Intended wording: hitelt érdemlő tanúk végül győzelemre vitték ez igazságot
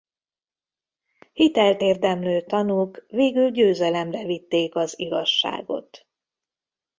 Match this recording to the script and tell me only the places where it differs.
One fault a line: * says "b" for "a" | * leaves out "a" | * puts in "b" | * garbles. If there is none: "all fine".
* says "az" for "ez"